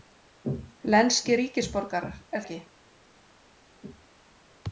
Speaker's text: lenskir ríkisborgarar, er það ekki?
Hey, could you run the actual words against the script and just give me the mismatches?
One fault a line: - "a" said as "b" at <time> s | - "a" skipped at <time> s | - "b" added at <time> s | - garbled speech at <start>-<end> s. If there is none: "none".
- "það" skipped at 2.4 s